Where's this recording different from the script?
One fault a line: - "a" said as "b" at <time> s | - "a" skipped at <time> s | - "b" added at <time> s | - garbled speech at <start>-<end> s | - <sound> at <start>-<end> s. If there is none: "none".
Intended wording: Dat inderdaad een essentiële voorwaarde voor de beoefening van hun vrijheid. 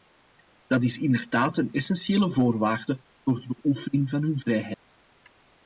- "is" added at 0.8 s
- dropout at 4.7-4.9 s